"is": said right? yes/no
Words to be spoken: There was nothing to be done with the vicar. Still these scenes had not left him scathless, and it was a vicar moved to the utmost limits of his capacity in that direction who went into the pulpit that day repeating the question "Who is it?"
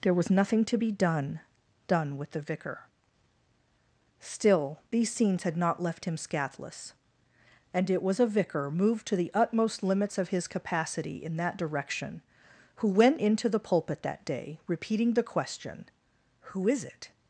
yes